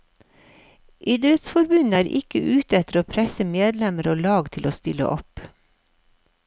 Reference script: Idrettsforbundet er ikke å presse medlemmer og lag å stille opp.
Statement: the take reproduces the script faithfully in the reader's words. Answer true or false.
false